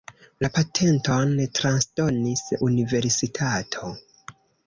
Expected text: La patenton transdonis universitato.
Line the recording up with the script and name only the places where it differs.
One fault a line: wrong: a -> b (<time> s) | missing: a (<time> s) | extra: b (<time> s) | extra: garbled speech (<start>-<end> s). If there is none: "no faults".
no faults